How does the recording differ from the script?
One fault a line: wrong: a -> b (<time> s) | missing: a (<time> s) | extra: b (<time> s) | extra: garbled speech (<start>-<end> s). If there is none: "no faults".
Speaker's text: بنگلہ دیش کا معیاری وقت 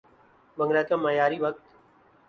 missing: دیش (0.8 s)